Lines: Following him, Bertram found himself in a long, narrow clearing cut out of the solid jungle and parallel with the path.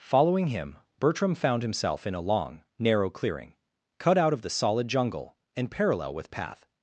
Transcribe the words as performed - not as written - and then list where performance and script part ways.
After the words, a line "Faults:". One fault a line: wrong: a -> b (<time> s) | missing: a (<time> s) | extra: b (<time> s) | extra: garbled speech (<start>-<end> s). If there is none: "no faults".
Following him, Bertram found himself in a long, narrow clearing cut out of the solid jungle and parallel with path.
Faults:
missing: the (6.3 s)